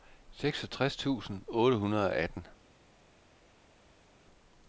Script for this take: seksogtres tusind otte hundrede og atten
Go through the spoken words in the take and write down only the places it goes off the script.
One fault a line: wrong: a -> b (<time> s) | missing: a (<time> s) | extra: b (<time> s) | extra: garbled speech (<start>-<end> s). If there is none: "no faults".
no faults